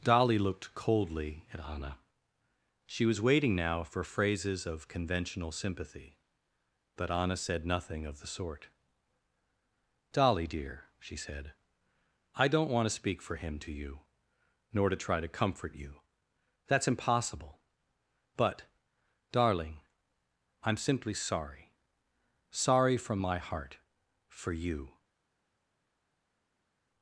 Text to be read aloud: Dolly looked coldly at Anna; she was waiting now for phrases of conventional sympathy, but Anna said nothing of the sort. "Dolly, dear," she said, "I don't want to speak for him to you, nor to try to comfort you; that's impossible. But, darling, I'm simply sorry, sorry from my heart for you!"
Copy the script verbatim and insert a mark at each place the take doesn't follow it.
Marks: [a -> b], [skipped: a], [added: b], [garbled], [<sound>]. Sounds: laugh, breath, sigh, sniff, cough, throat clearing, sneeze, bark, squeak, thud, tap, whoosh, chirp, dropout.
Dolly looked coldly at Anna; she was waiting now for phrases of conventional sympathy, but Anna said nothing of the sort. "Dolly, dear," she said, "I don't want to speak for him to you, nor to try to comfort you; that's impossible. But, darling, I'm simply sorry, sorry from my heart for you!"